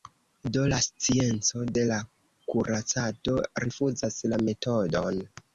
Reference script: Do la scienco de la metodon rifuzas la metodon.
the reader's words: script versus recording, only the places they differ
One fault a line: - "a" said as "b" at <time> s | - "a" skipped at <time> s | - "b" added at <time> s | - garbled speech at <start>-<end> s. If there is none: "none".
- "metodon" said as "kuracado" at 2.5 s